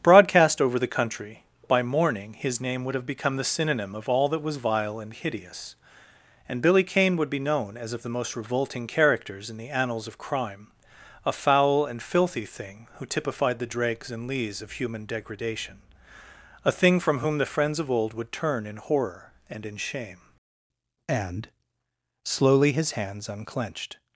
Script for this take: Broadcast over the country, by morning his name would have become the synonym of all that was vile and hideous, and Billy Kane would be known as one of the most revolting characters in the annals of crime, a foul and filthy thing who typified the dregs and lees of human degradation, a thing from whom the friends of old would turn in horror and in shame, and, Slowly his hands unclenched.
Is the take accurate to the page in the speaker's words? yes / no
no